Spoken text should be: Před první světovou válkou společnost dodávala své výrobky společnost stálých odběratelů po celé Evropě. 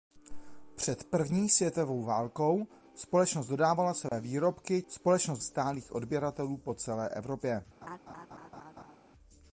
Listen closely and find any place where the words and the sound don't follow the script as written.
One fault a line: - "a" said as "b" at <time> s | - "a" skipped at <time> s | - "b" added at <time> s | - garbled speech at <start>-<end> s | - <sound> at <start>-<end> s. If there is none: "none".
- dropout at 4.1-4.1 s
- laugh at 7.8-9.0 s